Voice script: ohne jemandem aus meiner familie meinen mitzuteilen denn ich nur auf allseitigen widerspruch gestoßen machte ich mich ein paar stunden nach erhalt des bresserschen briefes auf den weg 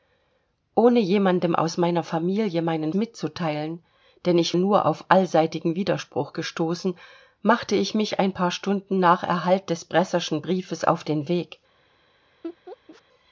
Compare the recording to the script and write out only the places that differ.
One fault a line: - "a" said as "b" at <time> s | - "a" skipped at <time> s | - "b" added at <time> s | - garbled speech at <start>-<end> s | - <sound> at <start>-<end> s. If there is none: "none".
- laugh at 12.4-13.0 s